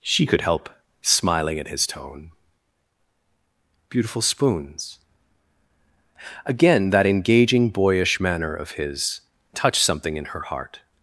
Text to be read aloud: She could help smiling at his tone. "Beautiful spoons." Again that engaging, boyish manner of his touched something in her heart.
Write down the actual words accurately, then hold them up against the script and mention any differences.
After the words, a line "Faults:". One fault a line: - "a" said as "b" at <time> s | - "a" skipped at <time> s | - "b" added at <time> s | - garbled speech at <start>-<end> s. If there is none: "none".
She could help smiling at his tone. "Beautiful spoons." Again that engaging, boyish manner of his touched something in her heart.
Faults:
none